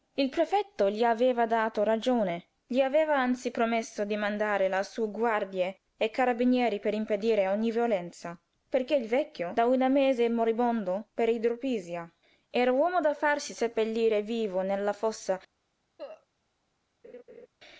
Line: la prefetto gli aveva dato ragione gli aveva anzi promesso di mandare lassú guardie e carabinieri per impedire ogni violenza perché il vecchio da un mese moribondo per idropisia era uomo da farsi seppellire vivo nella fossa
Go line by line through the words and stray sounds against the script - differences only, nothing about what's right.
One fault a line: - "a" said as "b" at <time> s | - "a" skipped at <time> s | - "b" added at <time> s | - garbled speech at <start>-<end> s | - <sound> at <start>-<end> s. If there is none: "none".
- "la" said as "il" at 0.1 s
- cough at 16.0-16.3 s
- laugh at 17.0-17.5 s